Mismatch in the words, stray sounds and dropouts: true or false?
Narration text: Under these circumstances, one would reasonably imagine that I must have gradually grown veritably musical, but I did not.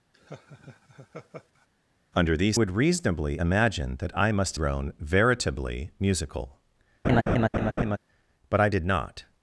true